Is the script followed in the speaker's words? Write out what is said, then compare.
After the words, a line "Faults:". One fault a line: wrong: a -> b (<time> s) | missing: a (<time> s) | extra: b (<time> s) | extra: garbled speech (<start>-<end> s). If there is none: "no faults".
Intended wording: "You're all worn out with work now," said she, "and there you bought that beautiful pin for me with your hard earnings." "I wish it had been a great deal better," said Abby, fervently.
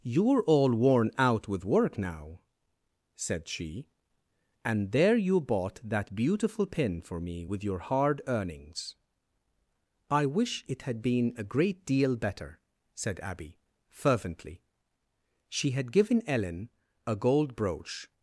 "You're all worn out with work now," said she, "and there you bought that beautiful pin for me with your hard earnings." "I wish it had been a great deal better," said Abby, fervently. She had given Ellen a gold brooch
Faults:
extra: She had given Ellen a gold brooch (15.5 s)